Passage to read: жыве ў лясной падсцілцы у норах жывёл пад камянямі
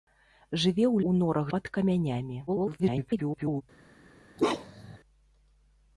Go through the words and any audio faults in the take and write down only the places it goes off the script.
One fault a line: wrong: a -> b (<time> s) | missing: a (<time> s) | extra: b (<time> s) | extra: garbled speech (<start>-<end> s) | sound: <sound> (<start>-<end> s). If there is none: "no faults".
missing: лясной падсцілцы (1.0 s)
missing: жывёл (1.5 s)
extra: garbled speech (2.5-3.6 s)
sound: bark (4.4-5.0 s)